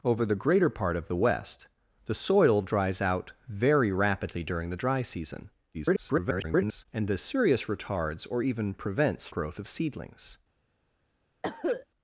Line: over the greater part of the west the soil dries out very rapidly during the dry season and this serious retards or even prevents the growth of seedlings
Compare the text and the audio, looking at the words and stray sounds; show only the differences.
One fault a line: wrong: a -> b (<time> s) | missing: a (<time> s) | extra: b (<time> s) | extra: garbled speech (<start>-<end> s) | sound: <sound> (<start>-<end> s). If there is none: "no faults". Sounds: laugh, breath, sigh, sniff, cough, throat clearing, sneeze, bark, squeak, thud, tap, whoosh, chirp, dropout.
extra: garbled speech (5.7-6.9 s)
missing: the (9.3 s)
sound: cough (11.4-11.9 s)